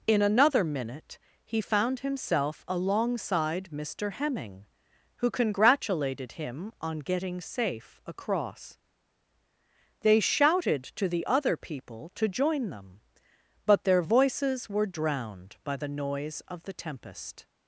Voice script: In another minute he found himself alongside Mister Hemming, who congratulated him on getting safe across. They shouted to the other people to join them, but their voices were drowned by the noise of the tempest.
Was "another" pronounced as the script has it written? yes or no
yes